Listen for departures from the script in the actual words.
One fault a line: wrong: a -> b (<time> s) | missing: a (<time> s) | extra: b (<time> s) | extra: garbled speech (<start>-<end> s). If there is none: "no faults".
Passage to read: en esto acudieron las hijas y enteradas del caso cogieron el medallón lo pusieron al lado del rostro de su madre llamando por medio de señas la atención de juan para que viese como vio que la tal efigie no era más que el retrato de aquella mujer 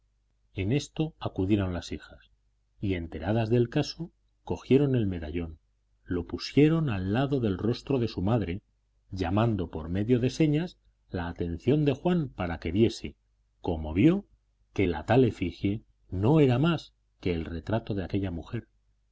no faults